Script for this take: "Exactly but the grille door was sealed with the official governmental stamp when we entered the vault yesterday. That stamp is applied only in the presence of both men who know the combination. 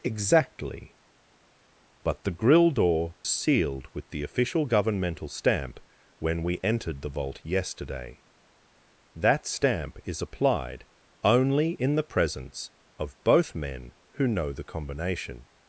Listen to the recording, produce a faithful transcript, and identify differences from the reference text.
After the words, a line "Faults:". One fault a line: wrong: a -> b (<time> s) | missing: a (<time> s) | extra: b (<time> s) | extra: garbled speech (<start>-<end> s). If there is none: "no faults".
"Exactly but the grille door sealed with the official governmental stamp when we entered the vault yesterday. That stamp is applied only in the presence of both men who know the combination.
Faults:
missing: was (3.1 s)